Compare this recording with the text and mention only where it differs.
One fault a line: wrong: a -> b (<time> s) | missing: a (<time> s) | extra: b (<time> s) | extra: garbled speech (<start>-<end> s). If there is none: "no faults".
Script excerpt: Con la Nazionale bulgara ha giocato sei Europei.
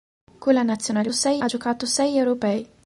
wrong: bulgara -> sei (1.1 s)